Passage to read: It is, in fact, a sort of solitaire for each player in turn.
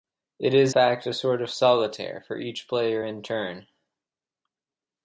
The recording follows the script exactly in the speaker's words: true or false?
false